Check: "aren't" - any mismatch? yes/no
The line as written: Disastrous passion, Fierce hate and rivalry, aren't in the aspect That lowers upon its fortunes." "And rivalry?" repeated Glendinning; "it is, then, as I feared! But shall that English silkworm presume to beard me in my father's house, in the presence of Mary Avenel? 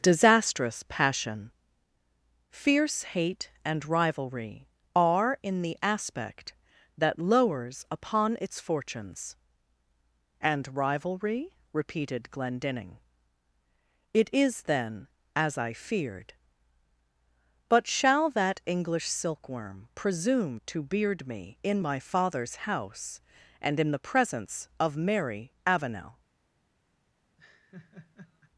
yes